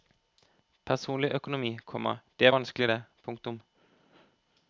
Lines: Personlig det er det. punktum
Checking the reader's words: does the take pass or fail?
fail